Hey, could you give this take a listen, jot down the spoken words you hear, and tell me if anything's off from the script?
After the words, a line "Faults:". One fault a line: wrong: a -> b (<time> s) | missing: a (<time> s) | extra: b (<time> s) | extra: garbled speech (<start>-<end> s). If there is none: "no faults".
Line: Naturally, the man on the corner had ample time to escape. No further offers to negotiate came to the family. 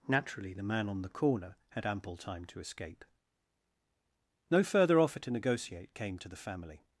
Naturally, the man on the corner had ample time to escape. No further offer to negotiate came to the family.
Faults:
wrong: offers -> offer (5.0 s)